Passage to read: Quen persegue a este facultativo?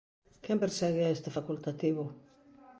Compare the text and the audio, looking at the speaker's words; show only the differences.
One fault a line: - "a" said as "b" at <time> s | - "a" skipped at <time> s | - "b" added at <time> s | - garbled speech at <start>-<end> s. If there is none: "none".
none